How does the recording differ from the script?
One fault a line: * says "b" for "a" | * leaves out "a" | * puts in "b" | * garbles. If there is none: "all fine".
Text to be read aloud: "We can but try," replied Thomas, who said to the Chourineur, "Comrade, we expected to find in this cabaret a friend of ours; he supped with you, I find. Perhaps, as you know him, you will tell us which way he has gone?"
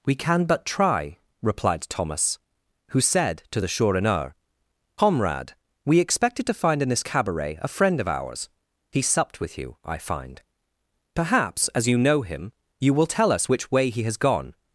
all fine